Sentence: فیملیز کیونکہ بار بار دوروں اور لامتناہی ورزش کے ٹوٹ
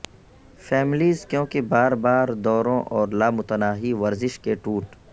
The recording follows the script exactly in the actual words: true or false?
true